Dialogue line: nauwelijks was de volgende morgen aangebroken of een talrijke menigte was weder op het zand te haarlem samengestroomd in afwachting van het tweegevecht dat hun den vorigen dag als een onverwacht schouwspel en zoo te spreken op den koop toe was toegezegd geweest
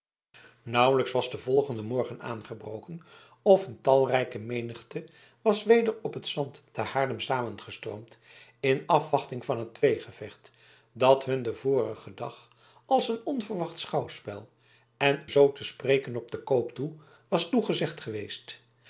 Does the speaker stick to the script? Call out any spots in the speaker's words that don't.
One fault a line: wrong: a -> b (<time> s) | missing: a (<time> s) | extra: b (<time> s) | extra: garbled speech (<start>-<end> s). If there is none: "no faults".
no faults